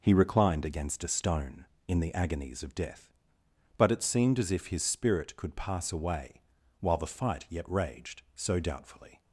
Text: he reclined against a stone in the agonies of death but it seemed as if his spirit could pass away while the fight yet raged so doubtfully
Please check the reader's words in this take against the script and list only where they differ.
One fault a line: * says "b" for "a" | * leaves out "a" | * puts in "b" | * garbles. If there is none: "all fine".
all fine